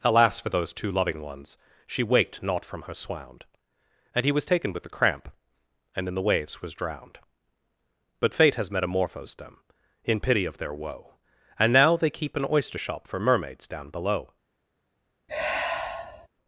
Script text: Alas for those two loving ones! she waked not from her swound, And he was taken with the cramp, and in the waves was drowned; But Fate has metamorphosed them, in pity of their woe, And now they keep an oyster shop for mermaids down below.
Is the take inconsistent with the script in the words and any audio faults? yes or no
yes